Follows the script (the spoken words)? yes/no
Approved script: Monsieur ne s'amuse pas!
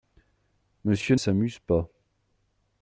no